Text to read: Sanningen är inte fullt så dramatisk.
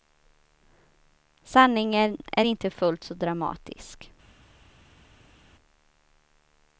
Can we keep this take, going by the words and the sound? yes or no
yes